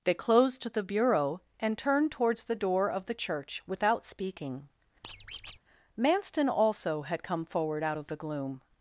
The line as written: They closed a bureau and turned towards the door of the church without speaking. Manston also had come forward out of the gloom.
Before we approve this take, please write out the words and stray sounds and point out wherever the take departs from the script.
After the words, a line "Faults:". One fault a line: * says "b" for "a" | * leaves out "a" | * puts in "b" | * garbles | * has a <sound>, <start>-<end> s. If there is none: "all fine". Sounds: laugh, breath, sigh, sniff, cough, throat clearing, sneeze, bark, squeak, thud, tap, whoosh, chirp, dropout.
They closed the bureau and turned towards the door of the church without speaking. Manston also had come forward out of the gloom.
Faults:
* says "the" for "a"
* has a squeak, 5.0-5.6 s